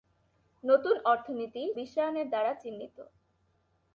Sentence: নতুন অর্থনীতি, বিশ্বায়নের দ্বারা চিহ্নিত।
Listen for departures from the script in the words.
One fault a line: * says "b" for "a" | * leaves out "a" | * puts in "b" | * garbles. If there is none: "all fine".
all fine